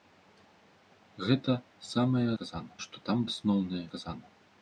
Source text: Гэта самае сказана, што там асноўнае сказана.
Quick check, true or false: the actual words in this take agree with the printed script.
true